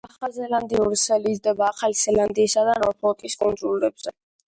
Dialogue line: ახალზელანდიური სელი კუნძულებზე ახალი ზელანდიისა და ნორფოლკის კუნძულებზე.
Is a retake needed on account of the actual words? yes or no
yes